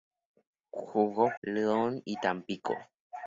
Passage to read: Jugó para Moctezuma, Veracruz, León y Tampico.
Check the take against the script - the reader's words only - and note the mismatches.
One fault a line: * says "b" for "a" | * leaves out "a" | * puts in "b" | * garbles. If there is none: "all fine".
* leaves out "para Moctezuma Veracruz"